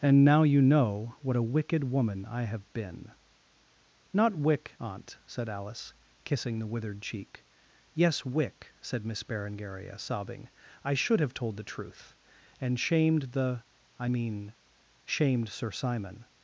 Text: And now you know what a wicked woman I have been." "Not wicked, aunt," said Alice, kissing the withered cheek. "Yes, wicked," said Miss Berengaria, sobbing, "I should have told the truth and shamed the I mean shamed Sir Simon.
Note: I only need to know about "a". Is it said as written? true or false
true